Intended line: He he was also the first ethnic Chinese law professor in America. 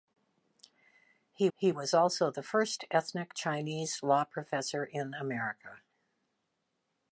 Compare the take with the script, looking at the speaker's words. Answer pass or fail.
pass